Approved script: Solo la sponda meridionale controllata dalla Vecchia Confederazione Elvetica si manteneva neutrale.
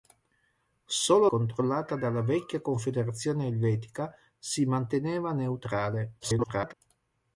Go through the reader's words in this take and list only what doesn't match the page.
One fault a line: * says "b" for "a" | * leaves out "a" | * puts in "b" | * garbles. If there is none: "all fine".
* leaves out "la sponda meridionale"
* garbles